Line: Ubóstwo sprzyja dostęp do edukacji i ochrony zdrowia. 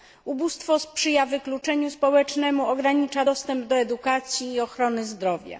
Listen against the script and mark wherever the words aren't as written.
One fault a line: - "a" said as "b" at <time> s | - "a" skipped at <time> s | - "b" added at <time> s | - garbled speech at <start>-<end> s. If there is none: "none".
- "wykluczeniu społecznemu ogranicza" added at 1.2 s